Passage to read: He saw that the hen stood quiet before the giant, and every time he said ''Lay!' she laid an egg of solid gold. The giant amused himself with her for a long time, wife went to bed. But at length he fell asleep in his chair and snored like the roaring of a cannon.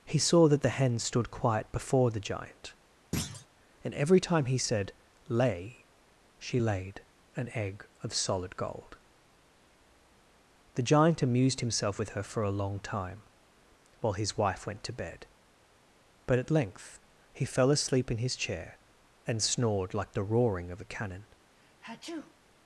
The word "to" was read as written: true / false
true